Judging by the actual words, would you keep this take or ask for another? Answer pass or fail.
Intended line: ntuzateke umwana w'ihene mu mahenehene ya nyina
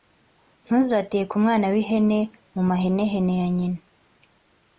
pass